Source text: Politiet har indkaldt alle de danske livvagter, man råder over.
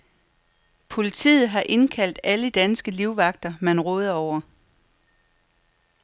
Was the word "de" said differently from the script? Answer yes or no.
yes